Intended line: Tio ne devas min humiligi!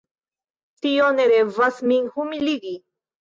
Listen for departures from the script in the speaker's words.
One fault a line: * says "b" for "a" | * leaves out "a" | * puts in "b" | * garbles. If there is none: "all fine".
all fine